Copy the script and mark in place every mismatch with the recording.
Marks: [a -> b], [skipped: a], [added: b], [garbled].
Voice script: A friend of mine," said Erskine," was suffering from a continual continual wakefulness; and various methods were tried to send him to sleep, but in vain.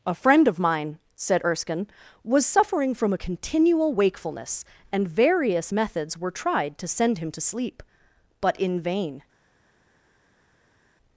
A friend of mine," said Erskine," was suffering from a continual [skipped: continual] wakefulness; and various methods were tried to send him to sleep, but in vain.